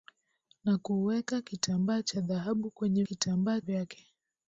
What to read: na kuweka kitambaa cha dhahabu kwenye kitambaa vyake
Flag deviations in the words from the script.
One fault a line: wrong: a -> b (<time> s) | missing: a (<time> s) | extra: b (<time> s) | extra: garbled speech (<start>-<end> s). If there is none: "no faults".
no faults